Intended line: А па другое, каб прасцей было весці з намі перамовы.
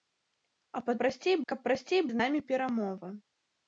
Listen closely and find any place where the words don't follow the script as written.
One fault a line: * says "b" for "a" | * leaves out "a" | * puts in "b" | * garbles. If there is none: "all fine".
* says "прасцей" for "другое"
* leaves out "было весці"